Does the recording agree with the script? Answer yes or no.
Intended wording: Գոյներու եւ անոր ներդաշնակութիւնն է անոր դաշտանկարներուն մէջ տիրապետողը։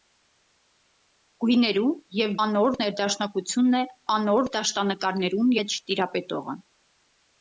yes